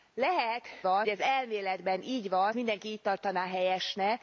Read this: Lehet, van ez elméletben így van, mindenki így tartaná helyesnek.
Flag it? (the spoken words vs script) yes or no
no